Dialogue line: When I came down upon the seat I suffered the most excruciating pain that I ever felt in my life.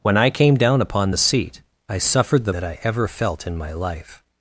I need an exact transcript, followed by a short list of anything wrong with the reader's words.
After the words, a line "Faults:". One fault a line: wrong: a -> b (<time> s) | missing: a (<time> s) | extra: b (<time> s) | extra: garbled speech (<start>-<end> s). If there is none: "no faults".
When I came down upon the seat I suffered the that I ever felt in my life.
Faults:
missing: most excruciating pain (2.5 s)